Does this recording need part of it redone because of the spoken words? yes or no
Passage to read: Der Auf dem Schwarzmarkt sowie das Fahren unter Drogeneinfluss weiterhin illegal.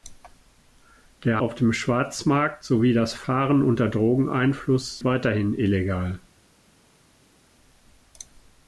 no